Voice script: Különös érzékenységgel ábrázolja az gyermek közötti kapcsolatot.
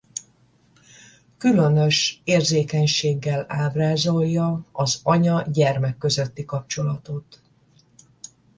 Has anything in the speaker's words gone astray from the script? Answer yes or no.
yes